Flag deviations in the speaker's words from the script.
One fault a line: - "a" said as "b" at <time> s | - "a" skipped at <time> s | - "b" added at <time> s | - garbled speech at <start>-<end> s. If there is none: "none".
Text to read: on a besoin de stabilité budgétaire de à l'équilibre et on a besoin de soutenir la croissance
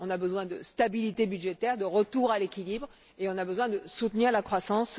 - "retour" added at 1.9 s